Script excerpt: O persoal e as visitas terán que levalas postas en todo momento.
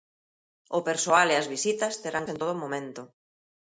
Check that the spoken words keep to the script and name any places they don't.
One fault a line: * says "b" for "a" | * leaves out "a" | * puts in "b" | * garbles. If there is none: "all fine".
* leaves out "que levalas postas"